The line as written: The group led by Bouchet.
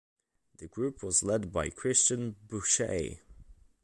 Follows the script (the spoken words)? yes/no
no